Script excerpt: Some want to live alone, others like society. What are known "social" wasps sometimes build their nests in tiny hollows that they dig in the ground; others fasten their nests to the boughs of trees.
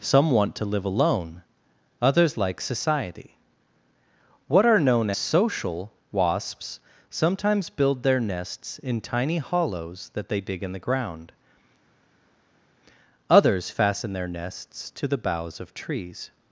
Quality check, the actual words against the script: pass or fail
pass